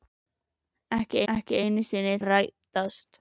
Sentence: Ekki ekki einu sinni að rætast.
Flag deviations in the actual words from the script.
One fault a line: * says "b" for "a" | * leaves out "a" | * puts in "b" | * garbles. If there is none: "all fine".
all fine